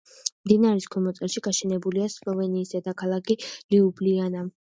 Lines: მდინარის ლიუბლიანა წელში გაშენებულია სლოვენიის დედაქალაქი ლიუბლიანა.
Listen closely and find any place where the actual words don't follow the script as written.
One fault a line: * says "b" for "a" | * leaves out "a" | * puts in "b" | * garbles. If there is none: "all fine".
* says "ქვემო" for "ლიუბლიანა"